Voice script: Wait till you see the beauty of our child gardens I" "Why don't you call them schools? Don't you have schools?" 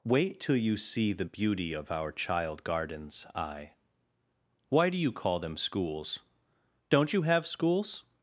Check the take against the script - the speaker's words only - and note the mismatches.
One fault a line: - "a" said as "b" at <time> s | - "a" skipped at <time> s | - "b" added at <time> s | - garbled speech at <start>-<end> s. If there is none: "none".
- "don't" said as "do" at 4.9 s